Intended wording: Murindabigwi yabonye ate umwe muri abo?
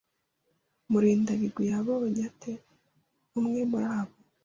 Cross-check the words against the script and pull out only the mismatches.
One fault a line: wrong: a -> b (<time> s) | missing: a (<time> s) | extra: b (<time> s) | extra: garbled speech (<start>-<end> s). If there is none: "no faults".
no faults